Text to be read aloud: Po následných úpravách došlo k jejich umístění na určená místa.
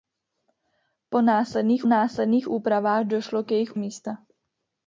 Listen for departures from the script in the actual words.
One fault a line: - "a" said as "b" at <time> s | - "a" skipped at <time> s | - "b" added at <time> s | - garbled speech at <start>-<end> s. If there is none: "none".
- "následných" added at 1.8 s
- "umístění na určená" skipped at 3.8 s